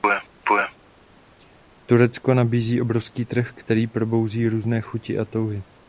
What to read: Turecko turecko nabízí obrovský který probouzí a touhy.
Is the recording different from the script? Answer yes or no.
yes